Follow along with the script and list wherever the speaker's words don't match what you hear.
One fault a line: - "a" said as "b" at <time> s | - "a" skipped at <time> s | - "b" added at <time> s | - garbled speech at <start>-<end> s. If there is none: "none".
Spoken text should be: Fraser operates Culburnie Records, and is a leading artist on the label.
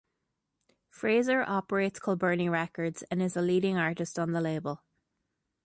none